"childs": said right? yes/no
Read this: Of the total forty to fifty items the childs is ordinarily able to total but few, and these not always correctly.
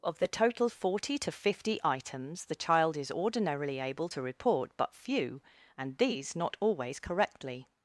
no